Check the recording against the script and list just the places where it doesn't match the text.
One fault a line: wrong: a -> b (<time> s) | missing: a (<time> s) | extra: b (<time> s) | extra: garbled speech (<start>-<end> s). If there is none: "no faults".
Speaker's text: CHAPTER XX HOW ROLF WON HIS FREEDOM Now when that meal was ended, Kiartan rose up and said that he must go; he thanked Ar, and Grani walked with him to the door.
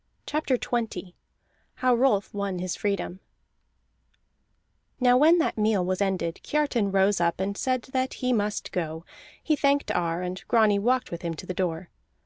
no faults